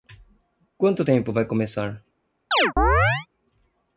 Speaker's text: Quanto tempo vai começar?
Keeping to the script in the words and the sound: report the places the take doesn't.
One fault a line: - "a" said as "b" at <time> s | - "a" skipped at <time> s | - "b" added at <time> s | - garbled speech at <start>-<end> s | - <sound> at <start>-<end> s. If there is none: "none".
- chirp at 2.5-3.3 s